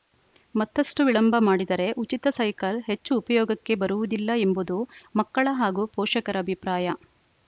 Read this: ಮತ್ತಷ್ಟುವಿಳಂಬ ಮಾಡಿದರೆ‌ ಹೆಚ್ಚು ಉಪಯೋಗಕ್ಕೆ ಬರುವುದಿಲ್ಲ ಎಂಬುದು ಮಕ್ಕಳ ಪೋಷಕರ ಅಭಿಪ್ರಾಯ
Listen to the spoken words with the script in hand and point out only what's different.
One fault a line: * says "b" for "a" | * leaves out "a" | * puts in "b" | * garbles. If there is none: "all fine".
* puts in "ಉಚಿತ ಸೈಕಲ್"
* puts in "ಹಾಗೂ"